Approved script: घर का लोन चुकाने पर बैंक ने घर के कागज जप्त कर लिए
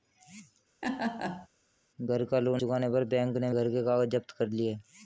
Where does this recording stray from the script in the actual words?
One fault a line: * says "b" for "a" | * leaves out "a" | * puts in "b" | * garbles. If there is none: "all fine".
all fine